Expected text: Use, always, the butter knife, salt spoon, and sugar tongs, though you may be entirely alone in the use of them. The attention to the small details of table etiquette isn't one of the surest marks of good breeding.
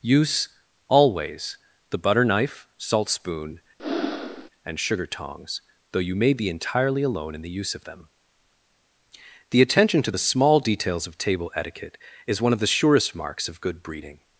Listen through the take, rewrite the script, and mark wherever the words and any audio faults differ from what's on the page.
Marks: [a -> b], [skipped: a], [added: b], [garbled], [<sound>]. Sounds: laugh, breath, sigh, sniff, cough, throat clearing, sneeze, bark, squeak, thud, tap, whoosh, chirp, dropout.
Use, always, the butter knife, salt spoon, [breath] and sugar tongs, though you may be entirely alone in the use of them. The attention to the small details of table etiquette [isn't -> is] one of the surest marks of good breeding.